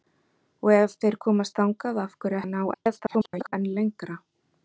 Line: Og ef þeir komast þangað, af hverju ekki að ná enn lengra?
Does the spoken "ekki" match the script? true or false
false